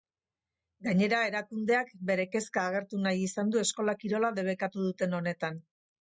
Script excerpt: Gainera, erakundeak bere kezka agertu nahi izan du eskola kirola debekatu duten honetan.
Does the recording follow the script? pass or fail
pass